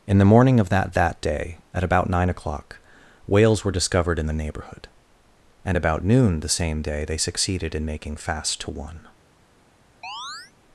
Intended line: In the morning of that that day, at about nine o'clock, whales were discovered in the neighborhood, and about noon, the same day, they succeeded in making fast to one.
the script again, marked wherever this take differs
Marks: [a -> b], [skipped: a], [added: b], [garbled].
In the morning of that that day, at about nine o'clock, whales were discovered in the neighborhood, and about noon, the same day, they succeeded in making fast to one.